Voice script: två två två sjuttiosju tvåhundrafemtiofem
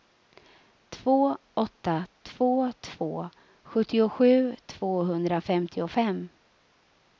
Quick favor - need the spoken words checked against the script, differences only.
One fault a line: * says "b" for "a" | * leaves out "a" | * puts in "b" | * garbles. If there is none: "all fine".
* puts in "åtta"